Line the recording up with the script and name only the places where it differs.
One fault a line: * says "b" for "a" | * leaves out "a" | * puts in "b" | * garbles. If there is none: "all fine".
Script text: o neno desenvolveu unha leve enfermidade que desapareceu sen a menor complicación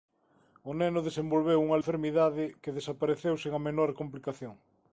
* leaves out "leve"